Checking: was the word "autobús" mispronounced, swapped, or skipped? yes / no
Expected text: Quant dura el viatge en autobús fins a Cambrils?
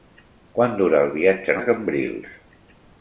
yes